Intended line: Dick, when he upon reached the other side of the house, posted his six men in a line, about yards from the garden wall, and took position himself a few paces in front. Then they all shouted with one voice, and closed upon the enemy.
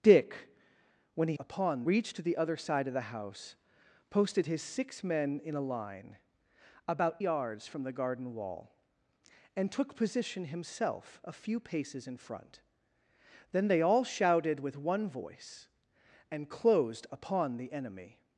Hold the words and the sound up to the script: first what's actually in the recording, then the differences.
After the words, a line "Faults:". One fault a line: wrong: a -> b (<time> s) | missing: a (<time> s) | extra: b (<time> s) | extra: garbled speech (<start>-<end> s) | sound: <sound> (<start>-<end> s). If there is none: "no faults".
Dick, when he upon reached the other side of the house, posted his six men in a line, about yards from the garden wall, and took position himself a few paces in front. Then they all shouted with one voice, and closed upon the enemy.
Faults:
no faults